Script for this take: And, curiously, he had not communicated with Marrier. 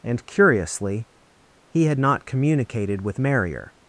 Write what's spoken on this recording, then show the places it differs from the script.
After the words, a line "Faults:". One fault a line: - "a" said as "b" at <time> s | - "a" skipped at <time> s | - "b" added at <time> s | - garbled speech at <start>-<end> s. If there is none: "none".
And, curiously, he had not communicated with Marrier.
Faults:
none